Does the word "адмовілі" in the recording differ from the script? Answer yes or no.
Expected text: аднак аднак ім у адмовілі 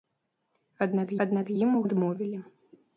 no